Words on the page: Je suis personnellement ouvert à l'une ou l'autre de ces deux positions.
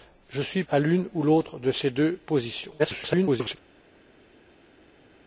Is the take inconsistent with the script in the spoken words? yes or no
yes